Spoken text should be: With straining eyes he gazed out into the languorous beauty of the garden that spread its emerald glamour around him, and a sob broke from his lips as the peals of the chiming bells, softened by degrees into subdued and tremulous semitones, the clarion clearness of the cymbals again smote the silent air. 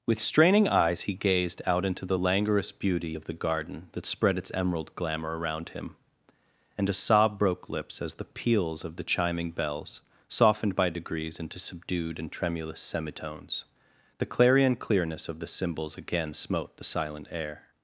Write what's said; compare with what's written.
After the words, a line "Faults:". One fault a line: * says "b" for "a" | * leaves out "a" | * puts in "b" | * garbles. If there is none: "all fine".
With straining eyes he gazed out into the languorous beauty of the garden that spread its emerald glamour around him, and a sob broke lips as the peals of the chiming bells, softened by degrees into subdued and tremulous semitones, the clarion clearness of the cymbals again smote the silent air.
Faults:
* leaves out "from his"